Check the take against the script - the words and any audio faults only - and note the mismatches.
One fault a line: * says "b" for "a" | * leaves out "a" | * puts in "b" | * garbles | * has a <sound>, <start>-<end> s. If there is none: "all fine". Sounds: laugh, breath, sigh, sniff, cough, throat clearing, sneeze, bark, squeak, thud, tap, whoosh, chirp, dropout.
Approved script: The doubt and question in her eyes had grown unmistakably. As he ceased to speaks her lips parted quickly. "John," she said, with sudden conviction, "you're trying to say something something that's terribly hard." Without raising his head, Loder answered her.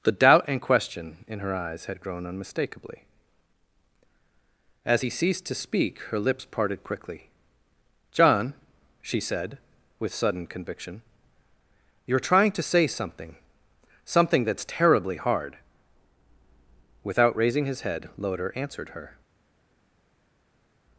* says "speak" for "speaks"